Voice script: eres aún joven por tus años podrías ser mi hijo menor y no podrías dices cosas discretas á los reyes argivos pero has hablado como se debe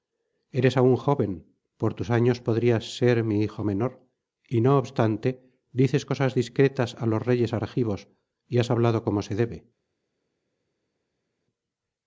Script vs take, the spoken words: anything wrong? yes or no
yes